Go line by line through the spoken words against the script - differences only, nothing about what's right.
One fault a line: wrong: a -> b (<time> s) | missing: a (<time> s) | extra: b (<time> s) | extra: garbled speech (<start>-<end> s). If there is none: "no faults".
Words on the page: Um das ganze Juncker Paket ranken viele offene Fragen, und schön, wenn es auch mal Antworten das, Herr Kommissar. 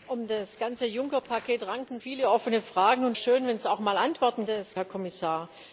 no faults